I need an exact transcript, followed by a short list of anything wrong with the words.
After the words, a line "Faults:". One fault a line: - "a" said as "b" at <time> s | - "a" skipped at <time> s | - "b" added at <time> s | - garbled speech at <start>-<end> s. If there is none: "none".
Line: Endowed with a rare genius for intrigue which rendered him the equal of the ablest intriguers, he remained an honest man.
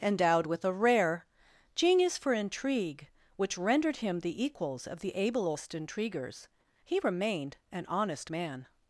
Endowed with a rare genius for intrigue which rendered him the equals of the ablest intriguers, he remained an honest man.
Faults:
- "equal" said as "equals" at 4.4 s